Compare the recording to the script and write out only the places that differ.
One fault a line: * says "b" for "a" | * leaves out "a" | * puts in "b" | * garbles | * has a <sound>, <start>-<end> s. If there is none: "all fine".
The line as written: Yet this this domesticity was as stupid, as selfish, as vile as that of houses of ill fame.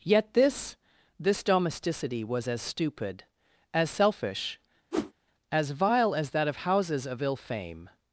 * has a whoosh, 4.9-5.1 s